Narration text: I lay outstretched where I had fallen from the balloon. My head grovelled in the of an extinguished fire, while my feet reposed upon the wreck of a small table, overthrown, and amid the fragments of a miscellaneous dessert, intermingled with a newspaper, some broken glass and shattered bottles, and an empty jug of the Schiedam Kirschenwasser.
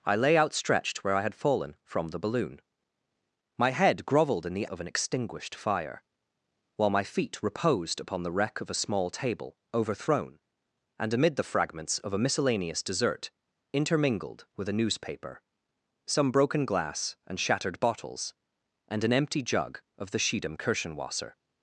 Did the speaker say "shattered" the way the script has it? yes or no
yes